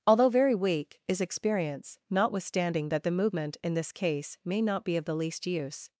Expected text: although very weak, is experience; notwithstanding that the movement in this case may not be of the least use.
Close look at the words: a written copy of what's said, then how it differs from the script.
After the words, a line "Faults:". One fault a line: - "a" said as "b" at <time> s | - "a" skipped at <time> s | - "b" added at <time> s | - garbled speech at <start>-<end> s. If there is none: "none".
although very weak, is experience; notwithstanding that the movement in this case may not be of the least use.
Faults:
none